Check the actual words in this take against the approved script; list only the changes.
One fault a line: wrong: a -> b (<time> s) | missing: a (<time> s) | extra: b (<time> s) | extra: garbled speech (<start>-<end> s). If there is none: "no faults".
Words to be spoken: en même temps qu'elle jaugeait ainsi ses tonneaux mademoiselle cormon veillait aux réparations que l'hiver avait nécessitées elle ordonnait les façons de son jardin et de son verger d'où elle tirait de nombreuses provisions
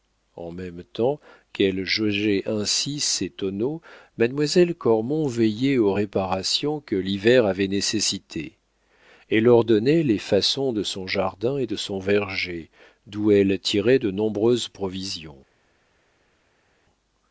no faults